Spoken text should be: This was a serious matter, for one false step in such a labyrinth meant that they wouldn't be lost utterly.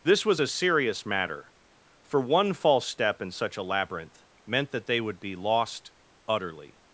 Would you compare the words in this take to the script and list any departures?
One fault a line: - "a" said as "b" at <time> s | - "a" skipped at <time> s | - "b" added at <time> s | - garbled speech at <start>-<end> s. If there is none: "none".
- "wouldn't" said as "would" at 5.0 s